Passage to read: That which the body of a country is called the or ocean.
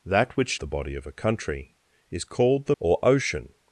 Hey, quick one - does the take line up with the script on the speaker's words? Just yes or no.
yes